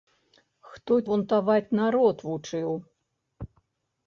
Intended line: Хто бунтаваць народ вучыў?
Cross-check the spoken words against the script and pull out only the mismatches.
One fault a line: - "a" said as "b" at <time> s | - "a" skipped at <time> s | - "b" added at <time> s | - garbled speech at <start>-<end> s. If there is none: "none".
none